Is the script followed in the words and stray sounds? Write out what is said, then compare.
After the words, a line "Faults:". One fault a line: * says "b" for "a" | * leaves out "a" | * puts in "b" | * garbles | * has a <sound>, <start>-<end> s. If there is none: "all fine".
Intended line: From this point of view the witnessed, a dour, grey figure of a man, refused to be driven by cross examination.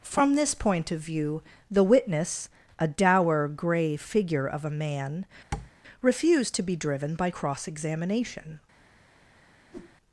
From this point of view the witness, a dour, grey figure of a man, refused to be driven by cross examination.
Faults:
* says "witness" for "witnessed"
* has a tap, 5.5-5.7 s
* has a whoosh, 9.7-10.0 s